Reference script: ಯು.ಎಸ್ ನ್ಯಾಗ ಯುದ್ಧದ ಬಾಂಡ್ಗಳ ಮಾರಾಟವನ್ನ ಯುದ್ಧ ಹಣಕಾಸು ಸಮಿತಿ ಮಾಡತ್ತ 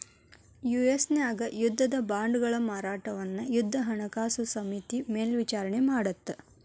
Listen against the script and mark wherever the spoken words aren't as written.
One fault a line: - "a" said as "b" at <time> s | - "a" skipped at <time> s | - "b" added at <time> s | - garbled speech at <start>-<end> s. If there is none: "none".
- "ಮೇಲ್ವಿಚಾರಣಿ" added at 5.1 s